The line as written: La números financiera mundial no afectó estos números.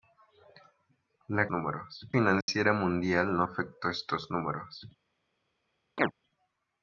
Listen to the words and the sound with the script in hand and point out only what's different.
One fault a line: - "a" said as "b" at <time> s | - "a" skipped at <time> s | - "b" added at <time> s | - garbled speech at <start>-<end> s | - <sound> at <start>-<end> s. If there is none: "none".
- dropout at 2.4-2.5 s
- chirp at 6.0-6.1 s